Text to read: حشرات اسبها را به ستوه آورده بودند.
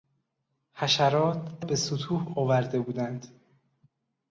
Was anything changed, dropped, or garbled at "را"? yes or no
yes